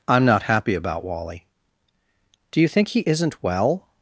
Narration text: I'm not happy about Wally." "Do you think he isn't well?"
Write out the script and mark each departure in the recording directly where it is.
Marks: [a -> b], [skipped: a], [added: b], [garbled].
I'm not happy about Wally." "Do you think he isn't well?"